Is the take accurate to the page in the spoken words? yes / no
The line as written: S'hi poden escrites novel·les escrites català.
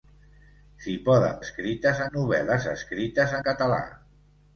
yes